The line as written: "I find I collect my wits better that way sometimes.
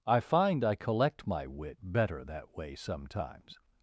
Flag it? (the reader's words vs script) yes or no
yes